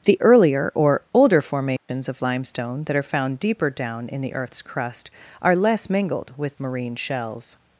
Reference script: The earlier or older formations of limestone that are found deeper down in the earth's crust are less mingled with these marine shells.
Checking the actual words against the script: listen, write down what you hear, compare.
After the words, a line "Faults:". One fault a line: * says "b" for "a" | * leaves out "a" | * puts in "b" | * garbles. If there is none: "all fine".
The earlier or older formations of limestone that are found deeper down in the earth's crust are less mingled with marine shells.
Faults:
* leaves out "these"